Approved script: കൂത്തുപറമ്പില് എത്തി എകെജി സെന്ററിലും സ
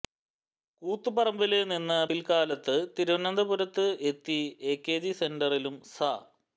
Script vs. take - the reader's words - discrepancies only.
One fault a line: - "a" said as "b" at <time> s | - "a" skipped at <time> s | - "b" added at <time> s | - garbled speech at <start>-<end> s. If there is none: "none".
- "നിന്ന് പില്ക്കാലത്ത് തിരുവനന്തപുരത്ത്" added at 1.7 s